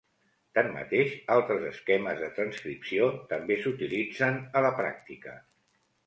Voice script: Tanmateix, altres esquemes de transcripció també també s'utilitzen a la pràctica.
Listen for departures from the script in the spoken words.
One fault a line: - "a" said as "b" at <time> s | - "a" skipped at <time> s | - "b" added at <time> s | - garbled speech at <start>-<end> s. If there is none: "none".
- "també" skipped at 3.6 s